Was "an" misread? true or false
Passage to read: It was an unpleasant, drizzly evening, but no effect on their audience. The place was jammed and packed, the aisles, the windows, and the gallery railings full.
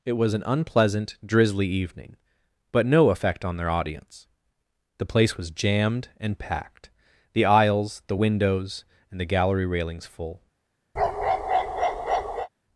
false